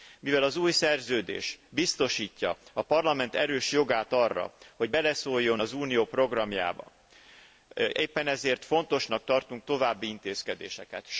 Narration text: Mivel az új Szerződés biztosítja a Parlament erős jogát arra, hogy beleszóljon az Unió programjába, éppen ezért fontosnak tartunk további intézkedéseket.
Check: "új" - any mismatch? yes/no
no